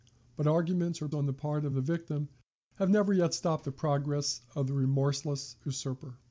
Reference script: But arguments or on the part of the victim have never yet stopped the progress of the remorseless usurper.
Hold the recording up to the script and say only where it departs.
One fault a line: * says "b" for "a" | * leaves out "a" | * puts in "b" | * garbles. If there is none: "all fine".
all fine